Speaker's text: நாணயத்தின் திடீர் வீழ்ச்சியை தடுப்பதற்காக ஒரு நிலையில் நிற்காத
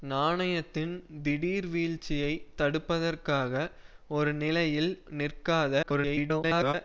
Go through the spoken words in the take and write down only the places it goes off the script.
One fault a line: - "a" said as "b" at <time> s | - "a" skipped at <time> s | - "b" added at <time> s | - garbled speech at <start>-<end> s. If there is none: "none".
- garbled speech at 5.8-6.7 s